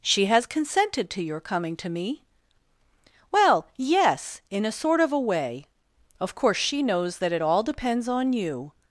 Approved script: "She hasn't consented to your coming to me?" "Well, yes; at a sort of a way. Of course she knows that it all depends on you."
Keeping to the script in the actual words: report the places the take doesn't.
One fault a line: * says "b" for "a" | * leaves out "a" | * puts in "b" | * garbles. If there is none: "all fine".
* says "has" for "hasn't"
* says "in" for "at"